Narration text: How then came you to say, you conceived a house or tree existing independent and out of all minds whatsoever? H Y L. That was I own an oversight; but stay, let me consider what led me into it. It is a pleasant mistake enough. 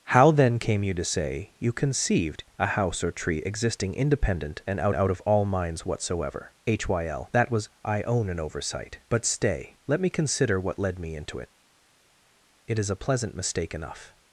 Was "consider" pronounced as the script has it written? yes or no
yes